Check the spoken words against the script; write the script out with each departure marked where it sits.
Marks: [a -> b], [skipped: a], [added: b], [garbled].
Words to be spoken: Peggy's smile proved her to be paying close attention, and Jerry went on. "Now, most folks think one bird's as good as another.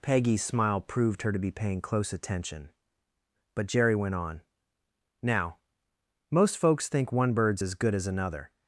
Peggy's smile proved her to be paying close attention, [and -> but] Jerry went on. "Now, most folks think one bird's as good as another.